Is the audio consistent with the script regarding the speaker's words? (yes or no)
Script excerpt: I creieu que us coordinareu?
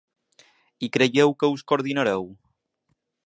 yes